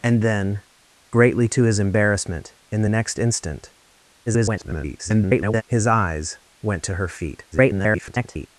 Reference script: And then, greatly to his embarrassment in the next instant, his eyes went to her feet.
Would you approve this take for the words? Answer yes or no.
no